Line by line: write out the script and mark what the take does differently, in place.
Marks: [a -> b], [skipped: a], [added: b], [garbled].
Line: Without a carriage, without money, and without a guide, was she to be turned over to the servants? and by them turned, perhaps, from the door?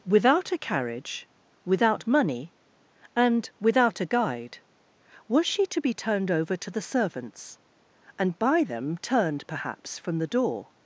Without a carriage, without money, and without a guide, was she to be turned over to the servants? and by them turned, perhaps, from the door?